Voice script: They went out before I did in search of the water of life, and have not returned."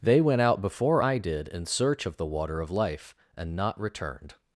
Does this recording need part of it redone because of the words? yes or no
yes